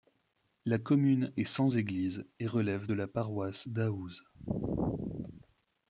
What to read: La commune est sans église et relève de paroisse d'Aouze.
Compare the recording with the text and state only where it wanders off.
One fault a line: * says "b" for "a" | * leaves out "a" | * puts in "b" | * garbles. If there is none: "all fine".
* puts in "la"